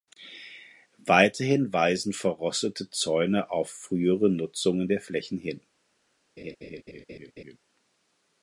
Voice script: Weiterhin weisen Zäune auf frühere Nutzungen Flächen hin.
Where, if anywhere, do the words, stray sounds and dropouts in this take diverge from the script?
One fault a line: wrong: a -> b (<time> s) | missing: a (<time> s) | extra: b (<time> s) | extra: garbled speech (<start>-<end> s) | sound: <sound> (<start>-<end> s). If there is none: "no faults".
extra: verrostete (2.1 s)
extra: der (4.9 s)
sound: laugh (6.4-7.6 s)